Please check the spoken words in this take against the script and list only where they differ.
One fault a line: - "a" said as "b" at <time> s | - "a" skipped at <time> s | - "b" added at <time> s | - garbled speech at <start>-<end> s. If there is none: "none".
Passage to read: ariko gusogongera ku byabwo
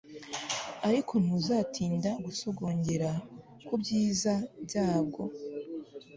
- "ntuzatinda" added at 1.2 s
- "byiza" added at 3.8 s